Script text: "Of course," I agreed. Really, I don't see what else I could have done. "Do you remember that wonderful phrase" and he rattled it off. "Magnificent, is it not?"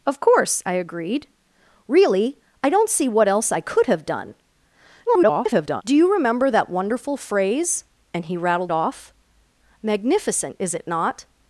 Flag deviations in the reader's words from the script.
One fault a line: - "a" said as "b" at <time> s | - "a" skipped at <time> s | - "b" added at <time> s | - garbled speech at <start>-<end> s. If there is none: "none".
- garbled speech at 5.1-5.8 s
- "it" skipped at 8.7 s